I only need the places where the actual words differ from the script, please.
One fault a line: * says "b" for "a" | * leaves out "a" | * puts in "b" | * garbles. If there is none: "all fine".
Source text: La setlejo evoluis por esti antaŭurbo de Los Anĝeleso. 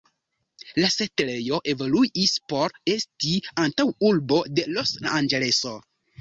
all fine